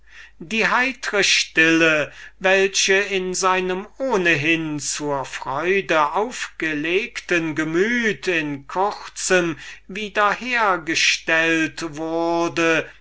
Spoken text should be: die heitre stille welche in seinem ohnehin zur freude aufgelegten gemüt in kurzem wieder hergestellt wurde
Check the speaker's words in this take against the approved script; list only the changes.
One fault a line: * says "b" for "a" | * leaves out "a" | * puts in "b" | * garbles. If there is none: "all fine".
all fine